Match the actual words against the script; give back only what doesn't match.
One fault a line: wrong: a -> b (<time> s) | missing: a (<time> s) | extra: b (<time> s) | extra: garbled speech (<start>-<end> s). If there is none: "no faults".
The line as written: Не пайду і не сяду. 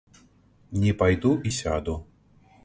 missing: не (1.5 s)